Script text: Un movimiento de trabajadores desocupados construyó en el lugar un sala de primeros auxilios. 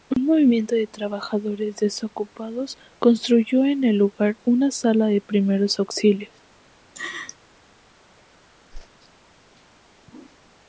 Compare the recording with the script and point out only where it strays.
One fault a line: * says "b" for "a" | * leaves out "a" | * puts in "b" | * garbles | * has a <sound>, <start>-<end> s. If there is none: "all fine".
* says "una" for "un"
* has a laugh, 6.9-7.4 s
* has a whoosh, 8.7-8.9 s